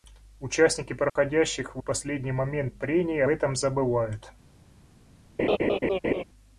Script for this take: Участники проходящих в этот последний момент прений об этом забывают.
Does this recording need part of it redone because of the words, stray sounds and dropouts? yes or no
yes